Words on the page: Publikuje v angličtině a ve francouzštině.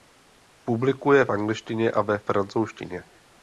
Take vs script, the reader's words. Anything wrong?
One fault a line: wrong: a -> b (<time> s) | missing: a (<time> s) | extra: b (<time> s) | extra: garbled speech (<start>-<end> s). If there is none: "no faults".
no faults